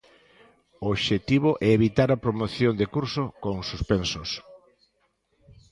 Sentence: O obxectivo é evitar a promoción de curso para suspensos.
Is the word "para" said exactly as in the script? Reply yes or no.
no